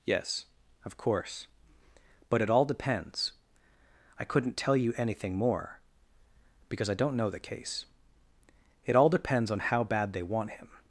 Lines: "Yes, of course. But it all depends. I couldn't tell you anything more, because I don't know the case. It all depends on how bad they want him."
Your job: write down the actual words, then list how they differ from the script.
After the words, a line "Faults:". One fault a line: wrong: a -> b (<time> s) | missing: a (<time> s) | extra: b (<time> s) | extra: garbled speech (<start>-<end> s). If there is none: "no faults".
"Yes, of course. But it all depends. I couldn't tell you anything more, because I don't know the case. It all depends on how bad they want him."
Faults:
no faults